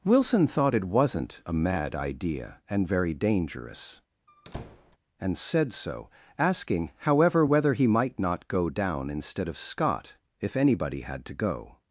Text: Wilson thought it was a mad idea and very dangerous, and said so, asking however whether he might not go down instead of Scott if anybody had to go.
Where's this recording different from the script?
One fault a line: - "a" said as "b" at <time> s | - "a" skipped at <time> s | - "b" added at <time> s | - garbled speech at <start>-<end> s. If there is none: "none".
- "was" said as "wasn't" at 0.8 s